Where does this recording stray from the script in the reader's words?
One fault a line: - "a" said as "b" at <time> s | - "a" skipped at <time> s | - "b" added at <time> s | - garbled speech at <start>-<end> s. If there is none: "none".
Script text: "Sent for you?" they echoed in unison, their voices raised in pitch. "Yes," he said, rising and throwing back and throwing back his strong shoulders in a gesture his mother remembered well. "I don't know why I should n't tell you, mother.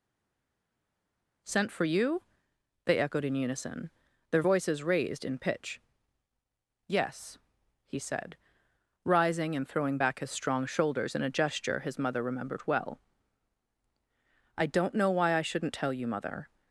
- "and throwing back" skipped at 10.2 s